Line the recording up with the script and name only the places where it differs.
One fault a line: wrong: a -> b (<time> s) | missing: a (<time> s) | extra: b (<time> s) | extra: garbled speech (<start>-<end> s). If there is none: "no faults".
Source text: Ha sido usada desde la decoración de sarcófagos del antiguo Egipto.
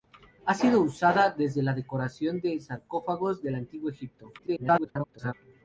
extra: garbled speech (4.4-5.3 s)